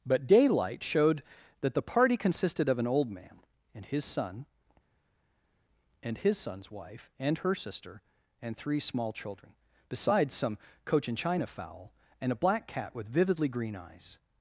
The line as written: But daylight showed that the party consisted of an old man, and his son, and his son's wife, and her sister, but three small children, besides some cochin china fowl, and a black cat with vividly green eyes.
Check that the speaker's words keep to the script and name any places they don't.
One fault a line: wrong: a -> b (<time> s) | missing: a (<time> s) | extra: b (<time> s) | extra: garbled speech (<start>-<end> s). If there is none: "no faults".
wrong: but -> and (8.4 s)